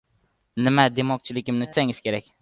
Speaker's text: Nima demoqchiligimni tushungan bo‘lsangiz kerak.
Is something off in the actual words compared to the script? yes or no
yes